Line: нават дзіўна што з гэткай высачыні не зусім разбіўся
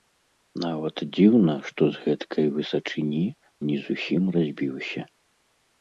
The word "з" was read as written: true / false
true